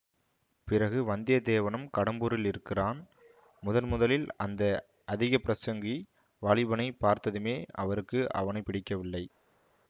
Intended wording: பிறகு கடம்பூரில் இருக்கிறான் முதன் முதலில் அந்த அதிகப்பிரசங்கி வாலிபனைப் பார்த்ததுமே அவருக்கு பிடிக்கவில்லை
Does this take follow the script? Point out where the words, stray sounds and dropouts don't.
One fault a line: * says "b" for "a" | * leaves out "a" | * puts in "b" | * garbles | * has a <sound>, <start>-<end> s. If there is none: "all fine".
* puts in "வந்தியத்தேவனும்"
* puts in "அவனை"